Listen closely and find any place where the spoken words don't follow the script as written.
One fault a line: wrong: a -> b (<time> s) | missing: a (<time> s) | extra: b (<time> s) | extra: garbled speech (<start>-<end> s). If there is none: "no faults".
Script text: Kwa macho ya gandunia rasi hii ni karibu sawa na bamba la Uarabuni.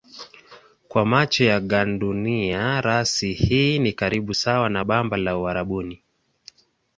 no faults